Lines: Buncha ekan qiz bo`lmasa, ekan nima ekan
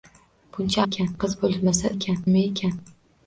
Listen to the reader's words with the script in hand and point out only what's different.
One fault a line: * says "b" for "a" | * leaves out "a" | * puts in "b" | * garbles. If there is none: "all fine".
all fine